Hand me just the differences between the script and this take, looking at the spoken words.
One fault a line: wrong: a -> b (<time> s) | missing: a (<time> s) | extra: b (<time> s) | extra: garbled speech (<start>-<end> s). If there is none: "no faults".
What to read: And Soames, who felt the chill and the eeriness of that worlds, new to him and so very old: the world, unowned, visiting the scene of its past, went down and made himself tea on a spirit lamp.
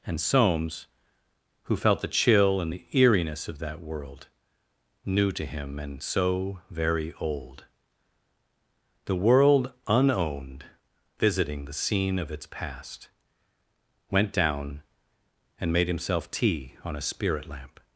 wrong: worlds -> world (3.8 s)